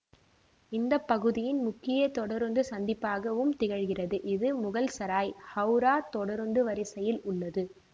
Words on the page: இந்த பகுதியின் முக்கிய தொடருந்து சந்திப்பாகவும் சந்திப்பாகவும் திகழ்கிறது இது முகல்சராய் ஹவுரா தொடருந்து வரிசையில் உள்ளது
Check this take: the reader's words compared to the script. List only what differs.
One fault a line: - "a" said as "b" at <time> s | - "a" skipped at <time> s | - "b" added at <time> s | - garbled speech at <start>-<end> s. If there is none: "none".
- "சந்திப்பாகவும்" skipped at 3.5 s